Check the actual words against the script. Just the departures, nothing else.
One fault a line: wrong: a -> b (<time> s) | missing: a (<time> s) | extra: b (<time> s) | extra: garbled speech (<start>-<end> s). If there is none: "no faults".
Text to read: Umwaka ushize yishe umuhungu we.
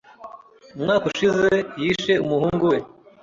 no faults